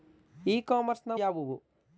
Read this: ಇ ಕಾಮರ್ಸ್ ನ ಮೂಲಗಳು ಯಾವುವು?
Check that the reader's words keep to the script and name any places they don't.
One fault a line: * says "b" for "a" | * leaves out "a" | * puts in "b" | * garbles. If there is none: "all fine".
* leaves out "ಮೂಲಗಳು"